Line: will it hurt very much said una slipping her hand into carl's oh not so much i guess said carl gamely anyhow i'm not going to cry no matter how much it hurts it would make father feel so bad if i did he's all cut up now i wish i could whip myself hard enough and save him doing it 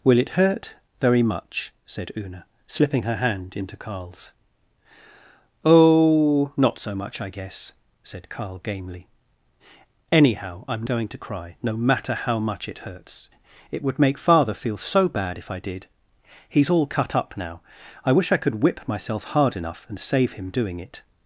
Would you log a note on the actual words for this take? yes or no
yes